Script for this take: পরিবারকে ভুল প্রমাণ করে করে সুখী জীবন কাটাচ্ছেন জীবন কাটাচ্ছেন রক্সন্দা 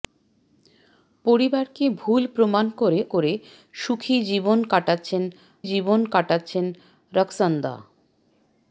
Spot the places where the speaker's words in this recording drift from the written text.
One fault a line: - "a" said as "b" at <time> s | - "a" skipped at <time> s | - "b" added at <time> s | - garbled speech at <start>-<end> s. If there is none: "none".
none